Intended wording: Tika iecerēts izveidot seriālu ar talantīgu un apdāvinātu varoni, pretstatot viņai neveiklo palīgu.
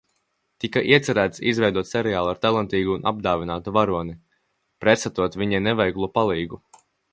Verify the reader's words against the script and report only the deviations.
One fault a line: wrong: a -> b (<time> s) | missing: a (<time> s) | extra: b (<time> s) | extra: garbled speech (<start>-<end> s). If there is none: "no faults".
no faults